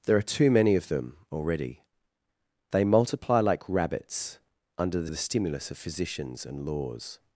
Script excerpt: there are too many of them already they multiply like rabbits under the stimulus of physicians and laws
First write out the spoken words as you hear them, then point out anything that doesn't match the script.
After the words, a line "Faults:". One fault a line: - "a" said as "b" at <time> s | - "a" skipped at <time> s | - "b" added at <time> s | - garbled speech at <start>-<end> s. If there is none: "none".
there are too many of them already they multiply like rabbits under the the stimulus of physicians and laws
Faults:
- "the" added at 5.1 s